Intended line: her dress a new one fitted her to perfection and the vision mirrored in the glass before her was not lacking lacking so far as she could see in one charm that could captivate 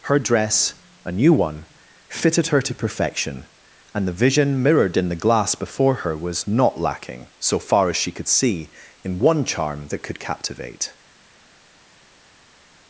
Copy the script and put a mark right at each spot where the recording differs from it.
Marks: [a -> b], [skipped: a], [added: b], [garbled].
her dress a new one fitted her to perfection and the vision mirrored in the glass before her was not lacking [skipped: lacking] so far as she could see in one charm that could captivate